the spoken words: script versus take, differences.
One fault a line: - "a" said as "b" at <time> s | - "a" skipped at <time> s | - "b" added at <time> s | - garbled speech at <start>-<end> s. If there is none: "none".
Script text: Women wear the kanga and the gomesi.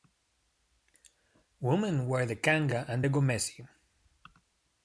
none